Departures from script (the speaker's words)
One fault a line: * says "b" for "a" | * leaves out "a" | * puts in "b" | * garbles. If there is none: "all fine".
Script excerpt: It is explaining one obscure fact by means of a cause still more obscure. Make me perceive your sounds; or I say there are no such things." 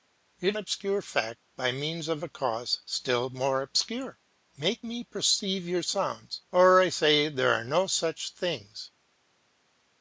* leaves out "is explaining one"